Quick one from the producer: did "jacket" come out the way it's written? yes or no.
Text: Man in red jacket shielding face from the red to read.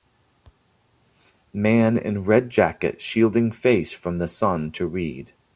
yes